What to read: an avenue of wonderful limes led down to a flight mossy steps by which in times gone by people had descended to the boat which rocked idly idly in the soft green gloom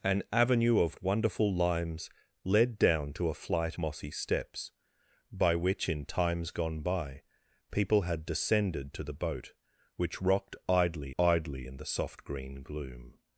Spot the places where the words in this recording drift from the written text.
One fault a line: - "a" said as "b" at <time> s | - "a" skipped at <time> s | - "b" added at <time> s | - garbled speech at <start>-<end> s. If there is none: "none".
none